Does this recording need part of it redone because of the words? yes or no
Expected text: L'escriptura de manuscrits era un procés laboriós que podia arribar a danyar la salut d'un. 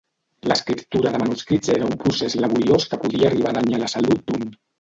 no